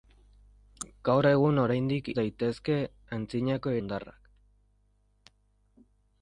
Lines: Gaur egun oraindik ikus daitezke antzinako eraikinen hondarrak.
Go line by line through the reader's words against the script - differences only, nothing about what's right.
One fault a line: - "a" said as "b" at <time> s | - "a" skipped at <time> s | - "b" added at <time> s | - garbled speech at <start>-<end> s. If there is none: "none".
- "ikus" skipped at 2.1 s
- "eraikinen" skipped at 3.8 s